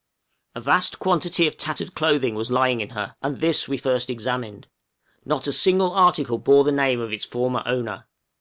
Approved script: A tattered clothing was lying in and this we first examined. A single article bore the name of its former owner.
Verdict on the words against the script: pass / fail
fail